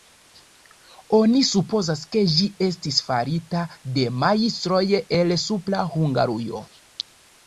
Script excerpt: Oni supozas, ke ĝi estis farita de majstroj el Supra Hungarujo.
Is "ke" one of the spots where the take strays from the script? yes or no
no